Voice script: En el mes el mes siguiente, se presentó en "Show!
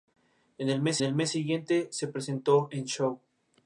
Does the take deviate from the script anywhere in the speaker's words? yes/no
no